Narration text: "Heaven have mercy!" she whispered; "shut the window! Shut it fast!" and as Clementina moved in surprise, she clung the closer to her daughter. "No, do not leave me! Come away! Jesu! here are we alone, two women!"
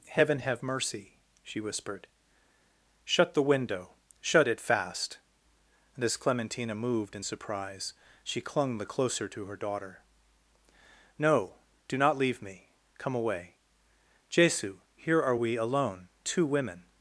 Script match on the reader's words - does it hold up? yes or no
yes